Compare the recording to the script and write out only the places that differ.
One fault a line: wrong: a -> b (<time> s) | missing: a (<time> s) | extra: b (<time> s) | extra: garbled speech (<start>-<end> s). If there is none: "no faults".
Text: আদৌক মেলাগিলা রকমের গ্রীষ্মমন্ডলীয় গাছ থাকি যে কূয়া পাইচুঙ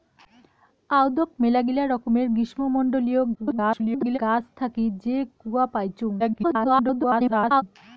extra: garbled speech (3.3-4.2 s)
extra: garbled speech (6.2-7.6 s)